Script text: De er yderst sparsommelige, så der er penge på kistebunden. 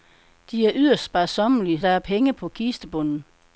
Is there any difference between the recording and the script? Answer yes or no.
yes